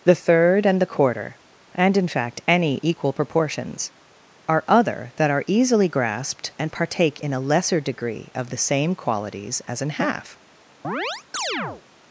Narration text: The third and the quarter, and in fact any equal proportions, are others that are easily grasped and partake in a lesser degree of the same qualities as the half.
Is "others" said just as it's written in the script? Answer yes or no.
no